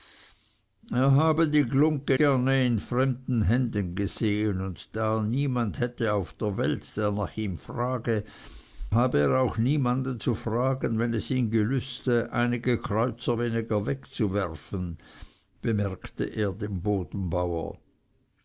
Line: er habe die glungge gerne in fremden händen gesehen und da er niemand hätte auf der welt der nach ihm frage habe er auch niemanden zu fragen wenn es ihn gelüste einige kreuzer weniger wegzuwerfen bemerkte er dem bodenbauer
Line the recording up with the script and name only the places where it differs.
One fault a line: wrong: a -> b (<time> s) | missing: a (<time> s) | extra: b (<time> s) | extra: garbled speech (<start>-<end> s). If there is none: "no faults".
no faults